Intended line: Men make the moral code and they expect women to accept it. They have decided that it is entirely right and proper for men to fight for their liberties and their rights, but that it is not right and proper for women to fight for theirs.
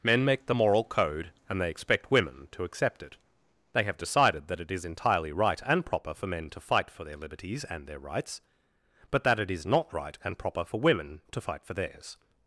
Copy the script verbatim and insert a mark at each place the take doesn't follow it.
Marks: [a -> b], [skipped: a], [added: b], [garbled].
Men make the moral code and they expect women to accept it. They have decided that it is entirely right and proper for men to fight for their liberties and their rights, but that it is not right and proper for women to fight for theirs.